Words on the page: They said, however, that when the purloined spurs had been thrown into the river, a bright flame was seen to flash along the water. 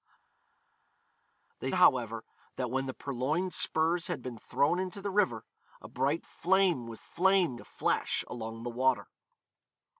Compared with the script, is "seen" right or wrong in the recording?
wrong